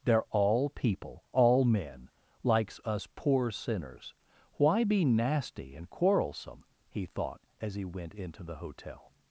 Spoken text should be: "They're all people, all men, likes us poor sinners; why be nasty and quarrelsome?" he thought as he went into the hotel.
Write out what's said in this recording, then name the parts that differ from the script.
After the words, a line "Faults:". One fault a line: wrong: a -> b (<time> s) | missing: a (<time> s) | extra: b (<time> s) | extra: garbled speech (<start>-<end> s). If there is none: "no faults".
"They're all people, all men, likes us poor sinners; why be nasty and quarrelsome?" he thought as he went into the hotel.
Faults:
no faults